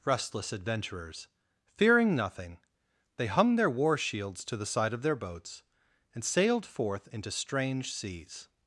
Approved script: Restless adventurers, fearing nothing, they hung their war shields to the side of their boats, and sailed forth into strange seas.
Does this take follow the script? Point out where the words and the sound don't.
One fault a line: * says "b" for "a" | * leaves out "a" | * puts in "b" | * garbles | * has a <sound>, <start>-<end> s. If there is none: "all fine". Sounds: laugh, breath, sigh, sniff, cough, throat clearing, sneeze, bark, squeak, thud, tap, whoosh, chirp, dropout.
all fine